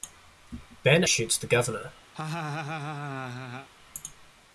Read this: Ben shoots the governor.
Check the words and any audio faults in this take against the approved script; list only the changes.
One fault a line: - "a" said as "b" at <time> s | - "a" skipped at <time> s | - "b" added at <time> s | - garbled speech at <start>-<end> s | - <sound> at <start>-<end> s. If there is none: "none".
- laugh at 2.1-3.7 s